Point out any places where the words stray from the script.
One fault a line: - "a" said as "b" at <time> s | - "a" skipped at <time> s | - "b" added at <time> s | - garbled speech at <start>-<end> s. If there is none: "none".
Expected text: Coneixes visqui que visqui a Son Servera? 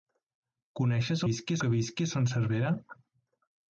none